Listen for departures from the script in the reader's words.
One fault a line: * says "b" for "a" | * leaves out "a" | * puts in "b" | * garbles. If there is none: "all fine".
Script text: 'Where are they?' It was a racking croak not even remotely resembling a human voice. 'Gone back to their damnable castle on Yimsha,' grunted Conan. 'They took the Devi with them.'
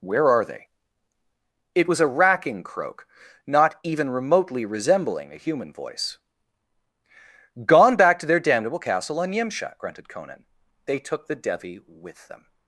all fine